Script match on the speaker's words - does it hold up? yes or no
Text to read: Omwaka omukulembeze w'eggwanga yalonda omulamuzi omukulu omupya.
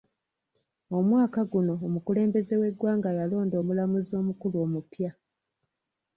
no